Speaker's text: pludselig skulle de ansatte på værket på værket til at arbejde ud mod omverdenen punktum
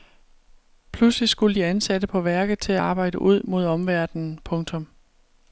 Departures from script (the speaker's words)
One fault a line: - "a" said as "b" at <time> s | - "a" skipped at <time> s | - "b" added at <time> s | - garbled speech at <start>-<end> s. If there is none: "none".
- "på værket" skipped at 2.6 s